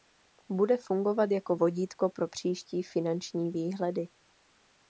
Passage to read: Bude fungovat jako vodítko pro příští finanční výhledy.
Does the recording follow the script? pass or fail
pass